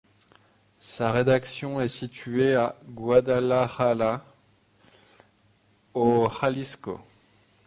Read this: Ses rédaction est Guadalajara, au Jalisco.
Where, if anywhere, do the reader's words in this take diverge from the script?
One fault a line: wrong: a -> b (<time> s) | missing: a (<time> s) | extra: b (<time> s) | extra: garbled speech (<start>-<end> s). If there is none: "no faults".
wrong: Ses -> Sa (0.8 s)
extra: située à (1.9 s)